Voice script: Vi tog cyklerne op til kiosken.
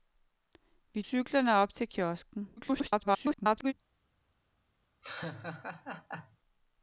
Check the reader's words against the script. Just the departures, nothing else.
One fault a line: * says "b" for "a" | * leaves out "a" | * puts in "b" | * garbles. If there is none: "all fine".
* leaves out "tog"
* garbles